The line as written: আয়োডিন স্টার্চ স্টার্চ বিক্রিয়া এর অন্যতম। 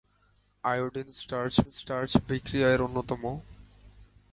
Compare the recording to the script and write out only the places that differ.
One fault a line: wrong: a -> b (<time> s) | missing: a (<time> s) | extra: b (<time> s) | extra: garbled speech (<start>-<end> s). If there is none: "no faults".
no faults